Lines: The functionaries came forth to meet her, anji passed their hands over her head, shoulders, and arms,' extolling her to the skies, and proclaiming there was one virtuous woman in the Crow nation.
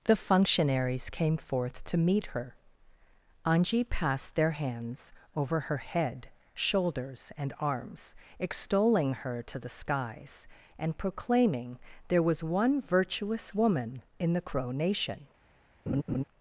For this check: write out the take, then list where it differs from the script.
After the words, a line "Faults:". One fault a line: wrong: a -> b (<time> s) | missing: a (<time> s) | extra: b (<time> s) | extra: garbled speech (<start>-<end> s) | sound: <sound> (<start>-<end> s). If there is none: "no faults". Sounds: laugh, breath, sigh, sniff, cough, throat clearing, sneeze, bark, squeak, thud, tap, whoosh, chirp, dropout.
The functionaries came forth to meet her, anji passed their hands over her head, shoulders, and arms,' extolling her to the skies, and proclaiming there was one virtuous woman in the Crow nation.
Faults:
sound: laugh (15.9-16.2 s)